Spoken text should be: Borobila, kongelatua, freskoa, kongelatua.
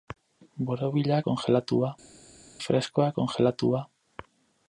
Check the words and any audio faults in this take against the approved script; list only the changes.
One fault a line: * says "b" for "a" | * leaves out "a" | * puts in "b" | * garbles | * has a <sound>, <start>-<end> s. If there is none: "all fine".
all fine